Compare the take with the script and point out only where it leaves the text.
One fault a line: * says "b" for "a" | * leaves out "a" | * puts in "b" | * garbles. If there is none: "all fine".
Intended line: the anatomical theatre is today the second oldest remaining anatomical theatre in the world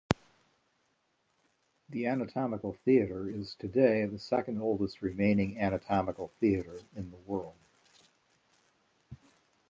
all fine